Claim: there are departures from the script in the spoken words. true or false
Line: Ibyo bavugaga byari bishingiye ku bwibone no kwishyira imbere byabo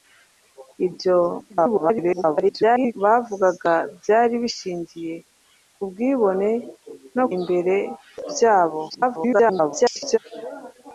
true